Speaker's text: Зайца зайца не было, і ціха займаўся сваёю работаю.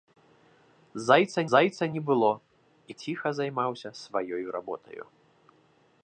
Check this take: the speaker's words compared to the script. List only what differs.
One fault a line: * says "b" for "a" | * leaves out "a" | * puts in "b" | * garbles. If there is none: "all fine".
all fine